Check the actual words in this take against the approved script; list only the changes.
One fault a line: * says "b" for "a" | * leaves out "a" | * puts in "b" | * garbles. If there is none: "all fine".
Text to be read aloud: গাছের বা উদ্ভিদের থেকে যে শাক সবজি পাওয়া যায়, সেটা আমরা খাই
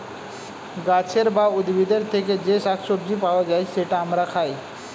all fine